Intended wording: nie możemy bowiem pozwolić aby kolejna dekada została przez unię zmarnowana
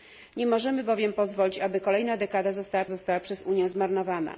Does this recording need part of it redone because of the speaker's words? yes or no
yes